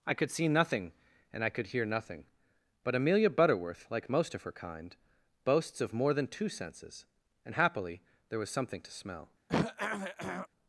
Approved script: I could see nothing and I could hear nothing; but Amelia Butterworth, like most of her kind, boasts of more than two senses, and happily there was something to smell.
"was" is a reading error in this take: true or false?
false